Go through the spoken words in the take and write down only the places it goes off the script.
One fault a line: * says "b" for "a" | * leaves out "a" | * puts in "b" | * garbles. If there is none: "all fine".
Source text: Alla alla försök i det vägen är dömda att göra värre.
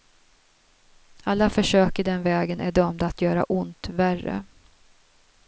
* leaves out "alla"
* says "den" for "det"
* puts in "ont"